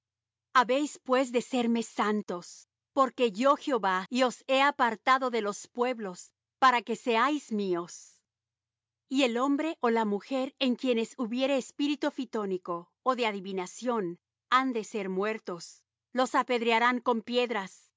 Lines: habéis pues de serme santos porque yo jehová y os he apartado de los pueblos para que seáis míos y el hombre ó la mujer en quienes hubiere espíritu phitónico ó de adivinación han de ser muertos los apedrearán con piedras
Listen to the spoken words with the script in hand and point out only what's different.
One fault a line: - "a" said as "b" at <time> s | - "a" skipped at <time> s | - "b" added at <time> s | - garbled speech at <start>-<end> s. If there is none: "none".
none